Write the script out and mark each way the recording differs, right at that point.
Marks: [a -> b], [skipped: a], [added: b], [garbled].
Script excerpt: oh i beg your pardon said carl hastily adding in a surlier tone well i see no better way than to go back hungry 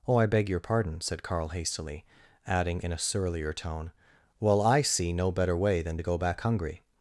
oh i beg your pardon said carl hastily adding in a surlier tone well i see no better way than to go back hungry